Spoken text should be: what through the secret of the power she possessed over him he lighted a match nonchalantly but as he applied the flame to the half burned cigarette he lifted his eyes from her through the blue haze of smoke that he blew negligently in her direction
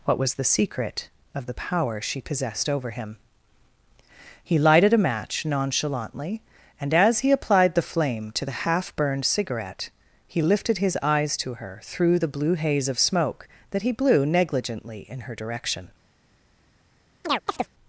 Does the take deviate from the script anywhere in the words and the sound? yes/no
yes